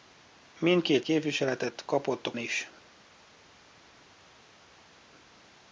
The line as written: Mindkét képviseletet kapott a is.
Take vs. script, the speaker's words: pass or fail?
pass